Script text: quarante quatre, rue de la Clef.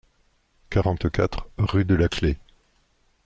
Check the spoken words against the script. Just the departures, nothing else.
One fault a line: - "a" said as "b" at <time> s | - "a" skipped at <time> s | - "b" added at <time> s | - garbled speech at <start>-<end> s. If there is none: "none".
none